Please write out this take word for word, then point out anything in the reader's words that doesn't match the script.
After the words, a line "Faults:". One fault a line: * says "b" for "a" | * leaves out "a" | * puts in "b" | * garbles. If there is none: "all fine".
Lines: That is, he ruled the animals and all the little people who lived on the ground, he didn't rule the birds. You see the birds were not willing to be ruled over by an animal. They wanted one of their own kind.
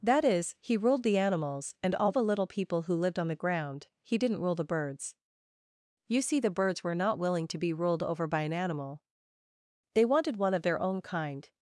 That is, he ruled the animals and all the little people who lived on the ground, he didn't rule the birds. You see the birds were not willing to be ruled over by an animal. They wanted one of their own kind.
Faults:
all fine